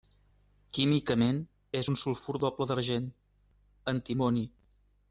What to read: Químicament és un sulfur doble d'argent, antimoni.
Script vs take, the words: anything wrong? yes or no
no